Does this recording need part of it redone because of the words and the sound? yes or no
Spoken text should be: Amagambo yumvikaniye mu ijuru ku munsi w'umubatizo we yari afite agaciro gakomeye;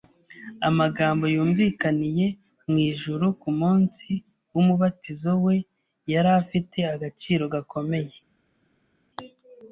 no